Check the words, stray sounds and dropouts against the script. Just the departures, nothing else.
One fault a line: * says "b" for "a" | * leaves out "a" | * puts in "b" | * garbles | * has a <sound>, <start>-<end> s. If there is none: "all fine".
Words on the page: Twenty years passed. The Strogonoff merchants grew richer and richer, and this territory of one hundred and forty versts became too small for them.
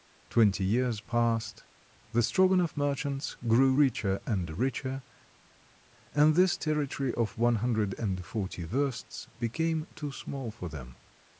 all fine